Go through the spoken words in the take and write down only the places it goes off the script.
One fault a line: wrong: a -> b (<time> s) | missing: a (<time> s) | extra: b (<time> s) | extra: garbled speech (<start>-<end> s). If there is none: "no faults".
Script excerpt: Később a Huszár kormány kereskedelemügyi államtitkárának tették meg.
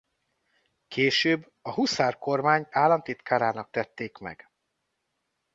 missing: kereskedelemügyi (2.7 s)